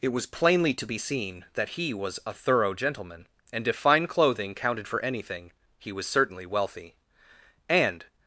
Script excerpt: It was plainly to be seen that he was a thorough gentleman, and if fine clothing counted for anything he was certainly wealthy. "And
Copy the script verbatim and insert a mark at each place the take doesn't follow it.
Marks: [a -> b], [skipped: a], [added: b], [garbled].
It was plainly to be seen that he was a thorough gentleman, and if fine clothing counted for anything he was certainly wealthy. "And